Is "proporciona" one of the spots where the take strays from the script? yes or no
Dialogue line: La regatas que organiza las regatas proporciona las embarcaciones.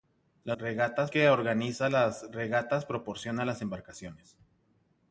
no